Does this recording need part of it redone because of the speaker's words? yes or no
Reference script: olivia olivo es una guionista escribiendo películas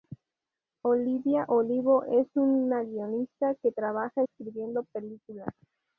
yes